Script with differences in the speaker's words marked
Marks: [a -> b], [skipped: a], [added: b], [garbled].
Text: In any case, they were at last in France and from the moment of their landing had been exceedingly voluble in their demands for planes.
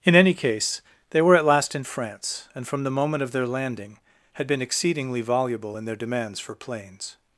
In any case, they were at last in France and from the moment of their landing had been exceedingly voluble in their demands for planes.